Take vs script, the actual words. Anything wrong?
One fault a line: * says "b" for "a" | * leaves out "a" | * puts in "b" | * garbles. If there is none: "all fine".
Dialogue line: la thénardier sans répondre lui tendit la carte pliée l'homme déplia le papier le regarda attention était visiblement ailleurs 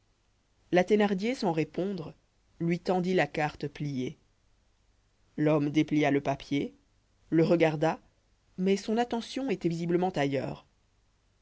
* puts in "mais son"